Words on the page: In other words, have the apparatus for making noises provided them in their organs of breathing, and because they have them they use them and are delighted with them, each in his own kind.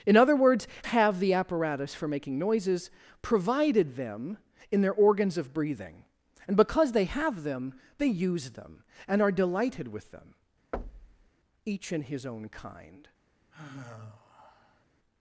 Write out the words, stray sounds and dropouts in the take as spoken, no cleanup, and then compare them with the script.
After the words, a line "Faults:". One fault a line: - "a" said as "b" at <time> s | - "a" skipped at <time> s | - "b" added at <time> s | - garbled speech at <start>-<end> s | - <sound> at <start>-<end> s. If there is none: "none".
In other words, have the apparatus for making noises provided them in their organs of breathing, and because they have them they use them and are delighted with them, each in his own kind.
Faults:
- thud at 10.7-11.3 s
- sigh at 13.5-14.9 s